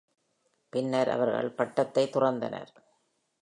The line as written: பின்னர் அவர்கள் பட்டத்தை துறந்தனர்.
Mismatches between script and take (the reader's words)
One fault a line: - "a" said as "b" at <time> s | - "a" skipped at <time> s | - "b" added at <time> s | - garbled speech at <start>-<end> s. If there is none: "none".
none